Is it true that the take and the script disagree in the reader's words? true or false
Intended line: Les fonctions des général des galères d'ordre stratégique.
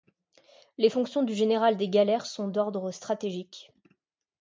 true